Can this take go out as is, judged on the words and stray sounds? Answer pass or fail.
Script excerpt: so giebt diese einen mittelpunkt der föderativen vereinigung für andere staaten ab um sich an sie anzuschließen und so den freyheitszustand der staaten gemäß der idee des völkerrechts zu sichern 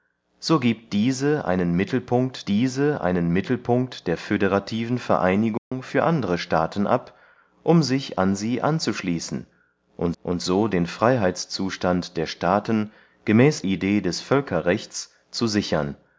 fail